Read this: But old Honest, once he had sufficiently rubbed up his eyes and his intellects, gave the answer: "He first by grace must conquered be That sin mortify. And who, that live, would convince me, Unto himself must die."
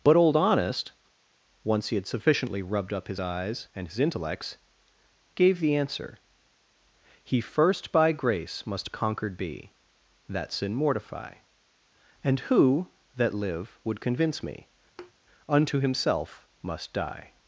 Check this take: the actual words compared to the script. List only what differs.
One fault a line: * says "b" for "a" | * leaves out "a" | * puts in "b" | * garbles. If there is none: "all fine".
all fine